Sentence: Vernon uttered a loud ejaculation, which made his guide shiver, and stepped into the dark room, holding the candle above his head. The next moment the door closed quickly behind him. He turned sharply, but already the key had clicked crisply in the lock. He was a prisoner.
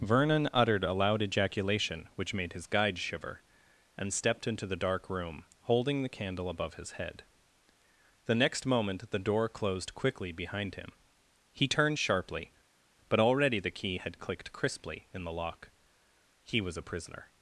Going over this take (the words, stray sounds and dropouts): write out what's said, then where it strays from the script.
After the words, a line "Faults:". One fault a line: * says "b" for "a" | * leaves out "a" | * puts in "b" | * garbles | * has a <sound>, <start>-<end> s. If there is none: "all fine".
Vernon uttered a loud ejaculation, which made his guide shiver, and stepped into the dark room, holding the candle above his head. The next moment the door closed quickly behind him. He turned sharply, but already the key had clicked crisply in the lock. He was a prisoner.
Faults:
all fine